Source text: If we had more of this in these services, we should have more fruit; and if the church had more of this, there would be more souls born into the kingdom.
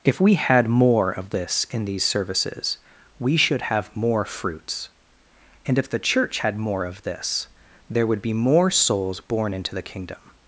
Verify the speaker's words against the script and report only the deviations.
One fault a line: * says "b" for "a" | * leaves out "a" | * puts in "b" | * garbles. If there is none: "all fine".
* says "fruits" for "fruit"